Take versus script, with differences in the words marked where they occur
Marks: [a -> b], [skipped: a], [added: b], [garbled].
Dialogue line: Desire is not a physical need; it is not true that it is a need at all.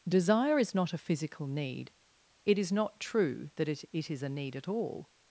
Desire is not a physical need; it is not true that it [added: it] is a need at all.